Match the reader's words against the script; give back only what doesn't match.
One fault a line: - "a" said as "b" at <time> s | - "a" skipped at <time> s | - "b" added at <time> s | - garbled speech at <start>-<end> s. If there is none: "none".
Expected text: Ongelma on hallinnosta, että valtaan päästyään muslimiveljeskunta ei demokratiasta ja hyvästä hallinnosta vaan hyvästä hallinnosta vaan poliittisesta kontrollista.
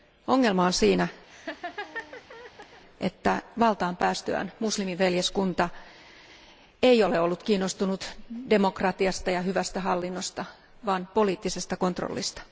- "hallinnosta" said as "siinä" at 0.7 s
- "demokratiasta ja hyvästä hallinnosta vaan" said as "ole ollut kiinnostunut demokratiasta ja" at 7.0 s